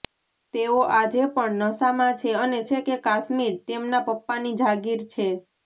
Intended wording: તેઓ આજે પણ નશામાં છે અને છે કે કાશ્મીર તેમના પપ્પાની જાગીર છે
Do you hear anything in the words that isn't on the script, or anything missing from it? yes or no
no